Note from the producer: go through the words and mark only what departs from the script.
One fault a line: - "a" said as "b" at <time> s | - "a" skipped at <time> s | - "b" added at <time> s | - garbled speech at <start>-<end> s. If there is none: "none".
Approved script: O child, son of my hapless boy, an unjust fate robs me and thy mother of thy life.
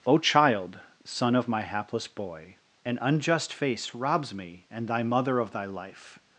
- "fate" said as "face" at 3.5 s